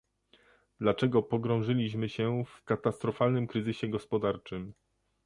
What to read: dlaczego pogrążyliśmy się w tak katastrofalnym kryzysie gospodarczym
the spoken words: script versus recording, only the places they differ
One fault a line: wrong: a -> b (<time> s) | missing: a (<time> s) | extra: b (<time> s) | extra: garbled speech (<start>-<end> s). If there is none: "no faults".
missing: tak (2.6 s)